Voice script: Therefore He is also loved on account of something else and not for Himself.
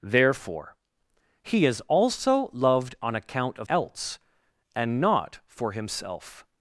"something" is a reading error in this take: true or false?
true